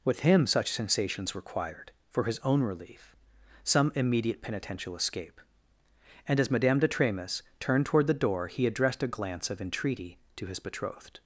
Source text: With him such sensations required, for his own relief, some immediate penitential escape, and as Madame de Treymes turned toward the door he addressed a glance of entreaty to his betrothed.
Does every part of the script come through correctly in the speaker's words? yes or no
yes